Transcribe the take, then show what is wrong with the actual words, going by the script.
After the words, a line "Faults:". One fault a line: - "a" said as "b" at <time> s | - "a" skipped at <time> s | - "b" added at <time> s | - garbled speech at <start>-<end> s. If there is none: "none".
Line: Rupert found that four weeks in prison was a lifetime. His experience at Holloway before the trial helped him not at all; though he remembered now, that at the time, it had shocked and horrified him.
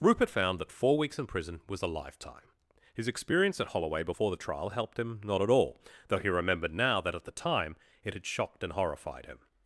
Rupert found that four weeks in prison was a lifetime. His experience at Holloway before the trial helped him not at all; though he remembered now, that at the time, it had shocked and horrified him.
Faults:
none